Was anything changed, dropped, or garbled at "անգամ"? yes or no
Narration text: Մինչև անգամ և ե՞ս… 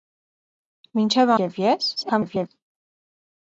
yes